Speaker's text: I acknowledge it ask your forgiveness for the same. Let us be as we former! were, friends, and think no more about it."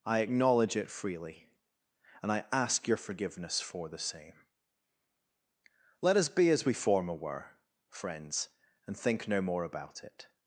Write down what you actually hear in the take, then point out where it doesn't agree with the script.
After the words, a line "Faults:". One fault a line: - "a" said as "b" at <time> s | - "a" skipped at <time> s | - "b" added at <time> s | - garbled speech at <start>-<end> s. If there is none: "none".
I acknowledge it freely, and I ask your forgiveness for the same. Let us be as we former! were, friends, and think no more about it."
Faults:
- "freely and I" added at 0.9 s